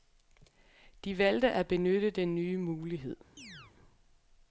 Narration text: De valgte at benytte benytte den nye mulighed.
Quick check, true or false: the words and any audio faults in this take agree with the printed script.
false